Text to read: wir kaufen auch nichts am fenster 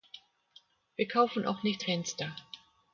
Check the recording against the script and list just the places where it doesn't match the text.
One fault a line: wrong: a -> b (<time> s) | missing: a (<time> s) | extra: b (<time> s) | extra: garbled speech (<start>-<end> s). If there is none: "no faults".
missing: am (1.9 s)